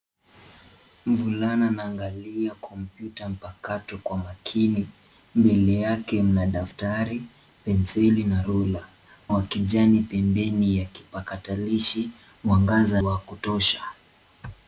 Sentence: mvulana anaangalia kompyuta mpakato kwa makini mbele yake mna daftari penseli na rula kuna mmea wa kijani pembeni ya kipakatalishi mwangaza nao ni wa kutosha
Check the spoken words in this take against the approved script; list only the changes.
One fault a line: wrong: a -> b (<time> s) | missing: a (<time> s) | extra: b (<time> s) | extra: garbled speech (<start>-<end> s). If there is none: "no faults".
missing: kuna mmea (8.8 s)
missing: nao ni (13.0 s)